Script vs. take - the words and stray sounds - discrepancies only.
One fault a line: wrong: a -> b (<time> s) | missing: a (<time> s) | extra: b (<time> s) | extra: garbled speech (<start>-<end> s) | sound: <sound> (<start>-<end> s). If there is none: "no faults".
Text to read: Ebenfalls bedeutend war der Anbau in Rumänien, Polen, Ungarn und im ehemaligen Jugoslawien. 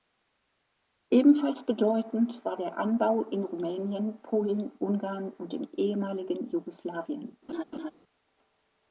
sound: laugh (7.5-7.9 s)